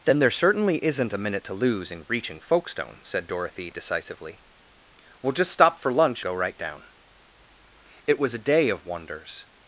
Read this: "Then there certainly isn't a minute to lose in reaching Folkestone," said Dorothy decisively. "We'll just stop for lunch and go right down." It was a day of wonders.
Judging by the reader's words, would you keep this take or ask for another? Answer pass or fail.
fail